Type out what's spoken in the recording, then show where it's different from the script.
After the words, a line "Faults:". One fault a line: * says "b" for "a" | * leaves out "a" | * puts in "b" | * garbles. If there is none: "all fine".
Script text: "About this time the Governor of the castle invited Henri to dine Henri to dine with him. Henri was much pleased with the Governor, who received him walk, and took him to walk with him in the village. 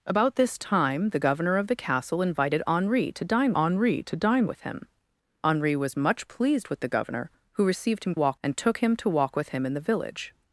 "About this time the Governor of the castle invited Henri to dine Henri to dine with him. Henri was much pleased with the Governor, who received him walk, and took him to walk with him in the village.
Faults:
all fine